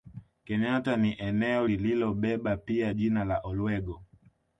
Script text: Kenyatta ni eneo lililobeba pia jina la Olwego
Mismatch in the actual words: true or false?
false